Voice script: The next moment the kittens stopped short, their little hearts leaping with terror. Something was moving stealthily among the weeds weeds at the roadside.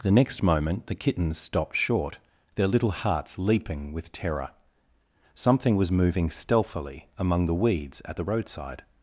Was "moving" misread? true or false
false